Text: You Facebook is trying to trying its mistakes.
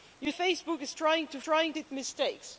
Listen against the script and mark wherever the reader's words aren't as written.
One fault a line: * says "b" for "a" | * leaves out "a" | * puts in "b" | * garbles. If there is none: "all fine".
all fine